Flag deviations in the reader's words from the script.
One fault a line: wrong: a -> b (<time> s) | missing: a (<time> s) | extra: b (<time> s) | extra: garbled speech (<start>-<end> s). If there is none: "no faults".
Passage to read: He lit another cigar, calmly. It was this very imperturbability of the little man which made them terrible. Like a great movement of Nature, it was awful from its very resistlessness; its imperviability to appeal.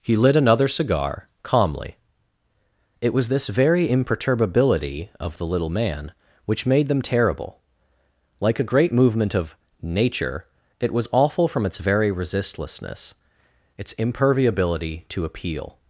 no faults